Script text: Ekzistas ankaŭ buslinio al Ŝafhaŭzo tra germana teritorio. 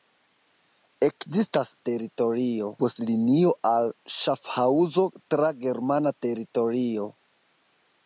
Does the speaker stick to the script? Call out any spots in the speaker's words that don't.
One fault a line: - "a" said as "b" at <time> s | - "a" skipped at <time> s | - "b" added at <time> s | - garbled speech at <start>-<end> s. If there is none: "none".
- "ankaŭ" said as "teritorio" at 1.9 s